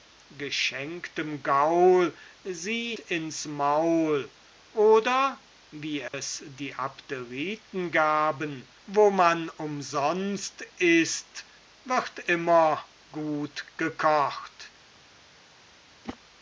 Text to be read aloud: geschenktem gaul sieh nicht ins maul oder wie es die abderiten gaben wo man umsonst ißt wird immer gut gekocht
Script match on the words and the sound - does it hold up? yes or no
no